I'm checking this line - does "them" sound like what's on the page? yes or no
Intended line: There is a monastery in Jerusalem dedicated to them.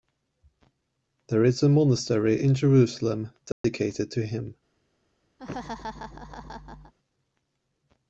no